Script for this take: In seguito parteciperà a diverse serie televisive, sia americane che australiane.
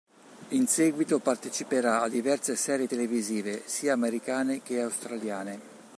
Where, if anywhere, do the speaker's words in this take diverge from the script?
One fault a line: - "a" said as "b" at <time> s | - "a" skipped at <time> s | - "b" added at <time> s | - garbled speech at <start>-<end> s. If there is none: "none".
none